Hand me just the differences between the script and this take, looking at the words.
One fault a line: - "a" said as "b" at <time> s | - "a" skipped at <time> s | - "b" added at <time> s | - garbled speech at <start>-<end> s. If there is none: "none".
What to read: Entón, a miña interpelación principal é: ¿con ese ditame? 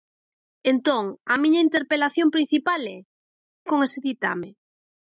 none